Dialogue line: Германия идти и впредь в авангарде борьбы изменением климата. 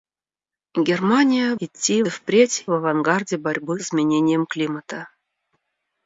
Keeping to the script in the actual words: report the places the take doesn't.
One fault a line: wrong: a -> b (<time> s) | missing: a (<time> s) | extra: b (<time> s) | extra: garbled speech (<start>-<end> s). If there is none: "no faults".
no faults